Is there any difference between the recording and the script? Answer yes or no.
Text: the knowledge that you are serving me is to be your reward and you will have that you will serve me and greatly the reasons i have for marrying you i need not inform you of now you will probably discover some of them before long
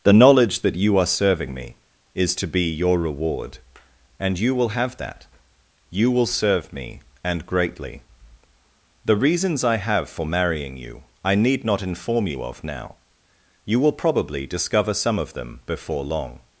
no